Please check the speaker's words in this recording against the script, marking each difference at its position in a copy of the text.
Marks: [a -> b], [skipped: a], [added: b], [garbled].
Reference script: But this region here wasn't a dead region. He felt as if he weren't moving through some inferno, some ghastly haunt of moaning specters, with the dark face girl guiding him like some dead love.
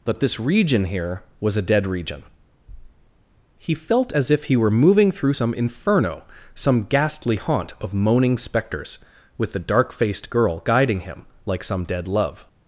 But this region here [wasn't -> was] a dead region. He felt as if he [weren't -> were] moving through some inferno, some ghastly haunt of moaning specters, with the dark [face -> faced] girl guiding him like some dead love.